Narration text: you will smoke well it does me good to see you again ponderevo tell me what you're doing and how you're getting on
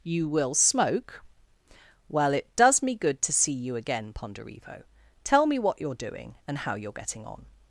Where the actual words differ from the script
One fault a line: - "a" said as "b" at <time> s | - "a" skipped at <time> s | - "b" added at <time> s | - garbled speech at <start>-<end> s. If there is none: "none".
none